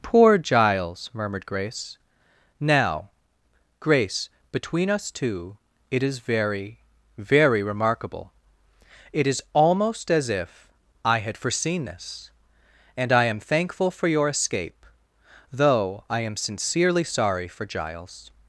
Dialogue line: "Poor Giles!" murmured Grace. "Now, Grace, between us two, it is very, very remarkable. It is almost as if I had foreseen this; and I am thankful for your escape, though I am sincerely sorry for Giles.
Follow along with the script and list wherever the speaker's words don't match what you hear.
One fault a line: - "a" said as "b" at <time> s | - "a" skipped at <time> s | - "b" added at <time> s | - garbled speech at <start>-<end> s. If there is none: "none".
none